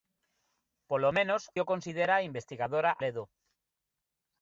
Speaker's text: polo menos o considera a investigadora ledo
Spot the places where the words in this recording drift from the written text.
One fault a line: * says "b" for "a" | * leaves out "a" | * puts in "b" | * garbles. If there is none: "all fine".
all fine